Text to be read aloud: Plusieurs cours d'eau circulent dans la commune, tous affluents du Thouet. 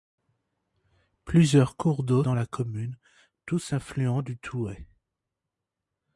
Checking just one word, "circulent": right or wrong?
wrong